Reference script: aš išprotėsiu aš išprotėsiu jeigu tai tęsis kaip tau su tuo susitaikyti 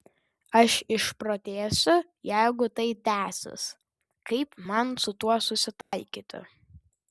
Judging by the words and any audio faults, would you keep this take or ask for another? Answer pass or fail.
fail